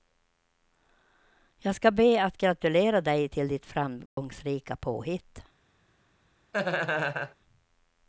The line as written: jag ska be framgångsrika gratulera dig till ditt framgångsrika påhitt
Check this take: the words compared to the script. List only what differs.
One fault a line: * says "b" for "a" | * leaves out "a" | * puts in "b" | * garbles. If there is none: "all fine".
* says "att" for "framgångsrika"